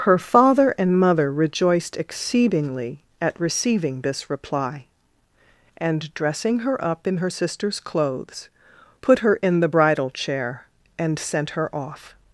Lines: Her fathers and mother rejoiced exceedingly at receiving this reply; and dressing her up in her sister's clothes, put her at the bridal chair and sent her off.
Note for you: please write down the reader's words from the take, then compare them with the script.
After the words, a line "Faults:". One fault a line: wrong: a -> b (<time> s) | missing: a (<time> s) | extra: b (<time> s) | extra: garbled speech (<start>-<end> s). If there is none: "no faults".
Her father and mother rejoiced exceedingly at receiving this reply; and dressing her up in her sister's clothes, put her in the bridal chair and sent her off.
Faults:
wrong: fathers -> father (0.2 s)
wrong: at -> in (9.4 s)